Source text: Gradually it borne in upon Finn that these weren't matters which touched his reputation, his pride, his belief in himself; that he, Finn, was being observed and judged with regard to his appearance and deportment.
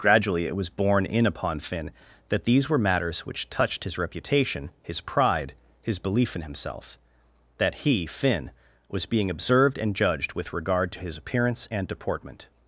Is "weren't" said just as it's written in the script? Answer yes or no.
no